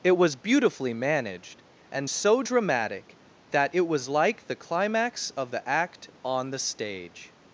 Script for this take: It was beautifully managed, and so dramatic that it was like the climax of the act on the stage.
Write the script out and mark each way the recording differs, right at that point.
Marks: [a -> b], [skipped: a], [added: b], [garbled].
It was beautifully managed, and so dramatic that it was like the climax of the act on the stage.